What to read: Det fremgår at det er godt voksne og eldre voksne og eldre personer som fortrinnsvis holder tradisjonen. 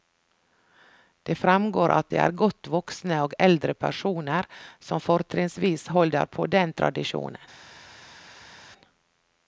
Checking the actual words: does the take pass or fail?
fail